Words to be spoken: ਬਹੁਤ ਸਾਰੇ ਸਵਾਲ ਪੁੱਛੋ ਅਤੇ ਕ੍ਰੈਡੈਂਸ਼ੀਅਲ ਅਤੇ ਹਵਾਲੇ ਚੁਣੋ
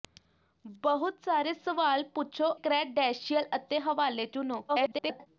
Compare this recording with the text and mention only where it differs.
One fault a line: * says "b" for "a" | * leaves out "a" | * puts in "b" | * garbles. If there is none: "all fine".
* leaves out "ਅਤੇ"
* garbles